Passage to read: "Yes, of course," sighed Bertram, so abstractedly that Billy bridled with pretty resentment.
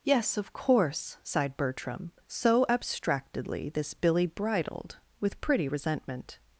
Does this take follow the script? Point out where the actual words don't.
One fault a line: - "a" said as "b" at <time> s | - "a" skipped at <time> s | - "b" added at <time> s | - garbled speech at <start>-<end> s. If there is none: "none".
- "that" said as "this" at 3.7 s